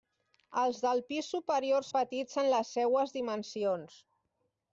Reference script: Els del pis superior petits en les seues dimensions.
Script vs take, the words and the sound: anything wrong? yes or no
no